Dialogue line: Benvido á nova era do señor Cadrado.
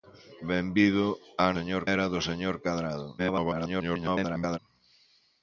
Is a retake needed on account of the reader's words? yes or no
yes